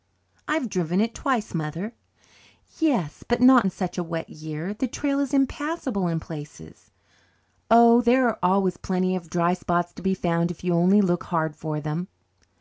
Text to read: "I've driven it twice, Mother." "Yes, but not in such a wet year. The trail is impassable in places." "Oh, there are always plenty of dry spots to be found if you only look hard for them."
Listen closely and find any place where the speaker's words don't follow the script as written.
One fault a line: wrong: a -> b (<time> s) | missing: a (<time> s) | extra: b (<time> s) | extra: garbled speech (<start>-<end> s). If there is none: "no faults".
no faults